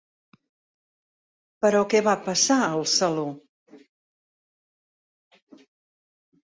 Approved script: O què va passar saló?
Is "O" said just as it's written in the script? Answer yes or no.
no